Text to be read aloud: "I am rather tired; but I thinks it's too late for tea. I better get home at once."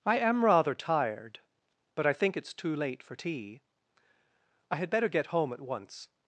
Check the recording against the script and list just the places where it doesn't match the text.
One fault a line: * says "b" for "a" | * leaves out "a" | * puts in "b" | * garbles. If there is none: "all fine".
* says "think" for "thinks"
* puts in "had"